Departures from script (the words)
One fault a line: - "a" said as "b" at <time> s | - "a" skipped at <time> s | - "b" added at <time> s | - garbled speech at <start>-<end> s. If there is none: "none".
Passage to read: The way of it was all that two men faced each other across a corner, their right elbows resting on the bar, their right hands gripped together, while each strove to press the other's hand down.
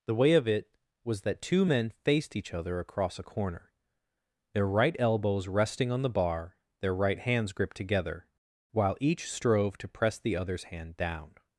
- "all" skipped at 1.2 s